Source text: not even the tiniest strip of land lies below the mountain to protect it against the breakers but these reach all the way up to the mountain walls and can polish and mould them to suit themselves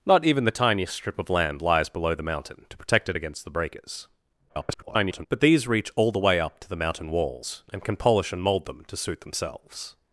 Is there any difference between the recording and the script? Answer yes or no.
yes